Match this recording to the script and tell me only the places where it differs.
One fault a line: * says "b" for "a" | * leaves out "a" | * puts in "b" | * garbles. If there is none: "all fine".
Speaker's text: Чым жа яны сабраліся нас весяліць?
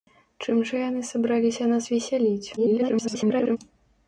* garbles